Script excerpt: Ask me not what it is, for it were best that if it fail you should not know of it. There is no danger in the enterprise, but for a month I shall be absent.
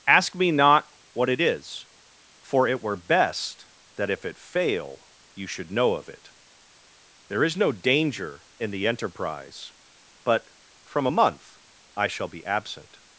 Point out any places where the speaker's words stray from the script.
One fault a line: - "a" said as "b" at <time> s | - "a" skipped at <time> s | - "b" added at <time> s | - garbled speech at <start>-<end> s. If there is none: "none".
- "not" skipped at 5.7 s
- "for" said as "from" at 10.8 s